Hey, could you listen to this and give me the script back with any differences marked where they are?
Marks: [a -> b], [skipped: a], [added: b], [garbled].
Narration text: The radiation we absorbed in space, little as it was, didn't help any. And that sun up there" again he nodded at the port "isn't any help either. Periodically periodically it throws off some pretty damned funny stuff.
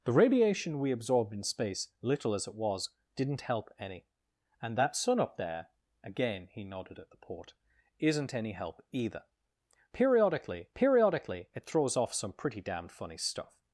The radiation we absorbed in space, little as it was, didn't help any. And that sun up there" again he nodded at the port "isn't any help either. Periodically periodically it throws off some pretty damned funny stuff.